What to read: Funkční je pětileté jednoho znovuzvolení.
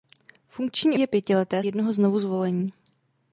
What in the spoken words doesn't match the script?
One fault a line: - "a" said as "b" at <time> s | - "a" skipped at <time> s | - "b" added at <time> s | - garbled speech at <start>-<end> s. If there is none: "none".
none